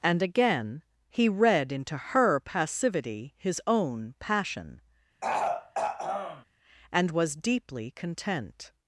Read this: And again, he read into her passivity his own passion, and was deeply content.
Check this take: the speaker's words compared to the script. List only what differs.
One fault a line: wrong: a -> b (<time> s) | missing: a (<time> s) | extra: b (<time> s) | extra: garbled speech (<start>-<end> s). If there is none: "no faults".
no faults